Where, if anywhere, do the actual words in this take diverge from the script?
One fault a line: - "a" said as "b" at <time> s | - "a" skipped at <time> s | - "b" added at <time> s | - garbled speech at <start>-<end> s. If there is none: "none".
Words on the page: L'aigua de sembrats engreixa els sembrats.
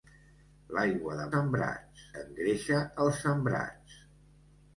none